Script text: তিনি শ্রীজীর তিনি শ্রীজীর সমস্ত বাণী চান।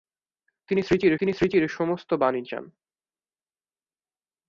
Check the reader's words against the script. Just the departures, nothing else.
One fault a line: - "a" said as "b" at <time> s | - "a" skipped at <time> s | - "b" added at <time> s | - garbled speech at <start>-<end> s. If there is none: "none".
none